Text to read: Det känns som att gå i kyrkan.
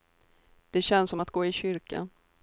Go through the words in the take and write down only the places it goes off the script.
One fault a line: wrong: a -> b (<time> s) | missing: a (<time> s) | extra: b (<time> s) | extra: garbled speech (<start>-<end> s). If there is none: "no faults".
no faults